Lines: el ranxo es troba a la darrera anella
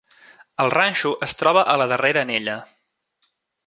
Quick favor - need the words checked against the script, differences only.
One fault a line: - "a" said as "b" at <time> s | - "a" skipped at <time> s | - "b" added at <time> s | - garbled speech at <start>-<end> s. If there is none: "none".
none